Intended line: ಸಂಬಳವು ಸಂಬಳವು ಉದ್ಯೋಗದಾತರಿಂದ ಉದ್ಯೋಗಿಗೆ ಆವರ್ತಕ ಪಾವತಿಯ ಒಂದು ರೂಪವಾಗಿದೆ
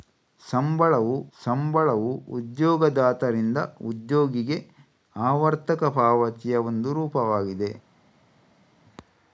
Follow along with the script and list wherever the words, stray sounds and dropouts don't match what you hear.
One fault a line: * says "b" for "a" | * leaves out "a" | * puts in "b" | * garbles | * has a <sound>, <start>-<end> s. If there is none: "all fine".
all fine